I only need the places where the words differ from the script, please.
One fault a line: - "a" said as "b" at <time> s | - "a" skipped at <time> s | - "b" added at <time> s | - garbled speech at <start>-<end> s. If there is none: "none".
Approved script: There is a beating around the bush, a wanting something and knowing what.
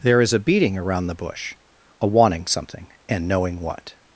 none